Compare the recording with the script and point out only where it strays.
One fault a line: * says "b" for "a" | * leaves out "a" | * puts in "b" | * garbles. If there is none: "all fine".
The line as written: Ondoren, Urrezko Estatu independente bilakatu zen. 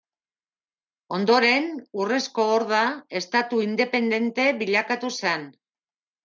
* puts in "Horda"